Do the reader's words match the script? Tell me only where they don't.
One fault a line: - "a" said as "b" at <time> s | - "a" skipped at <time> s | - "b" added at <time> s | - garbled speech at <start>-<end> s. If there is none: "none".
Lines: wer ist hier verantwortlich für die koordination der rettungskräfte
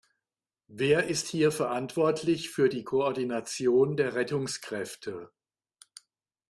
none